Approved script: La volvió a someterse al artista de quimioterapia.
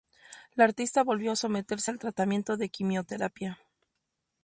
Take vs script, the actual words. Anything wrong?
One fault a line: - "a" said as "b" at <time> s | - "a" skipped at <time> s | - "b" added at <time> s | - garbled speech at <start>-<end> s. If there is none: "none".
- "artista" added at 0.6 s
- "artista" said as "tratamiento" at 2.0 s